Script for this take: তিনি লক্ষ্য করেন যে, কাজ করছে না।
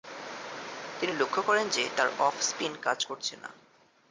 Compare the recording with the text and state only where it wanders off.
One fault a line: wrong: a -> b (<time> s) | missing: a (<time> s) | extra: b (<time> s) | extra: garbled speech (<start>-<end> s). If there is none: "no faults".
extra: তার অফ স্পিন (2.0 s)